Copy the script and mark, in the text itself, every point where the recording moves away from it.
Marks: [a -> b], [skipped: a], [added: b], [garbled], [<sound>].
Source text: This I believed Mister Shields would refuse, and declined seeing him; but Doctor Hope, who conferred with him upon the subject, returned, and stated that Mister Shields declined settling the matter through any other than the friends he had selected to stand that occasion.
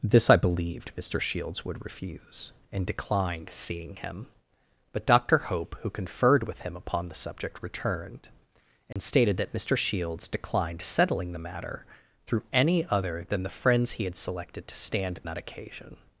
This I believed Mister Shields would refuse, and declined seeing him; but Doctor Hope, who conferred with him upon the subject, returned, and [dropout] stated that Mister Shields declined settling the matter through any other than the friends he had selected to stand that occasion.